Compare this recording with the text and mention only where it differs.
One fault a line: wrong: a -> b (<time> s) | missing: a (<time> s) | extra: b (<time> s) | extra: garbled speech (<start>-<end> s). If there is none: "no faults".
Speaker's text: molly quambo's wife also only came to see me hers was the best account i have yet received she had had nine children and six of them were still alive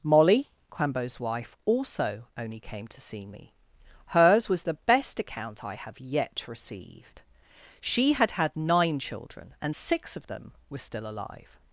no faults